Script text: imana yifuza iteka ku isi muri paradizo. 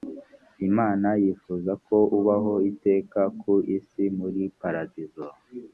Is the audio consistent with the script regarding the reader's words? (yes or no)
no